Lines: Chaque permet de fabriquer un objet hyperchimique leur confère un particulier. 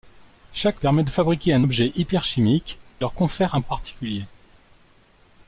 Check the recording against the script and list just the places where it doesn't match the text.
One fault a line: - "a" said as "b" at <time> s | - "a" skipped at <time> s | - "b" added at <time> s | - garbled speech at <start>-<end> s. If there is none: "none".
none